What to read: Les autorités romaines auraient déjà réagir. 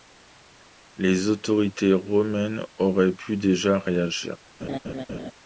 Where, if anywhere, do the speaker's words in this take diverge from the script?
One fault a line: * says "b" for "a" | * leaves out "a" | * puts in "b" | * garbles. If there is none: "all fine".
* puts in "pu"